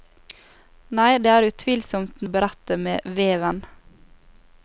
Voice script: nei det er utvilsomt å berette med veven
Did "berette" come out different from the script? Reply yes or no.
no